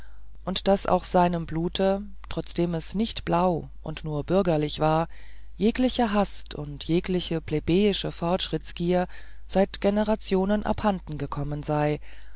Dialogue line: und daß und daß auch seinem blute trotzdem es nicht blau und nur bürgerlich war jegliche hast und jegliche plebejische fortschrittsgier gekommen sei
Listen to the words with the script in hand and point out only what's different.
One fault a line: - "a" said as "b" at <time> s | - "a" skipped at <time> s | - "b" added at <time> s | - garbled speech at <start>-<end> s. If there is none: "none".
- "und daß" skipped at 0.9 s
- "seit generationen abhanden" added at 9.5 s